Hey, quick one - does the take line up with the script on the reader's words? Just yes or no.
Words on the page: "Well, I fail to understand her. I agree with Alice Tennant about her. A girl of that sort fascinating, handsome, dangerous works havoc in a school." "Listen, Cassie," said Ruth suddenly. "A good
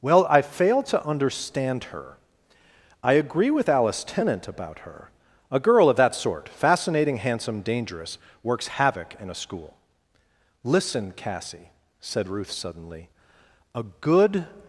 yes